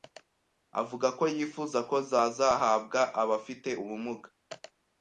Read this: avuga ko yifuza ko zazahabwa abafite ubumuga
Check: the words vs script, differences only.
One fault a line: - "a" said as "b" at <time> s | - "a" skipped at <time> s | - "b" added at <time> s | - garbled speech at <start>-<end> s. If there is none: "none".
none